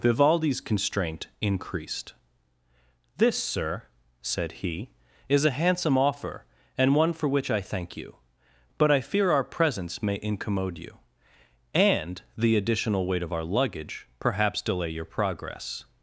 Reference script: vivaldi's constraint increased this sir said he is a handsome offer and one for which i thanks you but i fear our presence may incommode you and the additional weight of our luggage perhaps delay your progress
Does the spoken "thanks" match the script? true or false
false